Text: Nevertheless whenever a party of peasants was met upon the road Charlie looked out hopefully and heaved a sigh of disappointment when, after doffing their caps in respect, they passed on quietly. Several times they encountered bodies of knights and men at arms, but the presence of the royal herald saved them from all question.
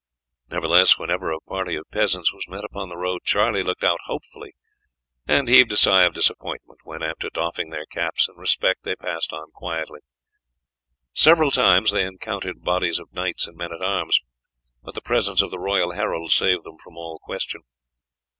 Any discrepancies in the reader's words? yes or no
no